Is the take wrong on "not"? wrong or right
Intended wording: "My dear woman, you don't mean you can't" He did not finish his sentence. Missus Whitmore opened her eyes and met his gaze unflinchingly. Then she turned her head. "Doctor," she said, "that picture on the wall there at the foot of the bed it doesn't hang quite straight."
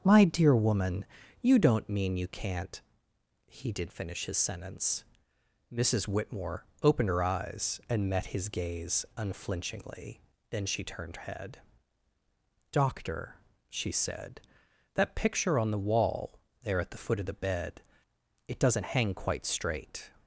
wrong